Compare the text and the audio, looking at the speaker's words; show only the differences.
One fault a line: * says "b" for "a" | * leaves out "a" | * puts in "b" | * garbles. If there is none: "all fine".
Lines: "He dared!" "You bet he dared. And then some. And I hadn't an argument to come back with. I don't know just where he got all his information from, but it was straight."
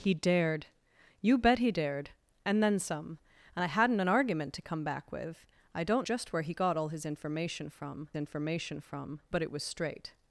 * leaves out "know"
* puts in "information from"